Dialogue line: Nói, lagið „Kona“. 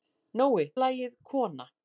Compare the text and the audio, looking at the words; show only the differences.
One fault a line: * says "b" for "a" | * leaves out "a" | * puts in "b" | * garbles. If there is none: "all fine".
all fine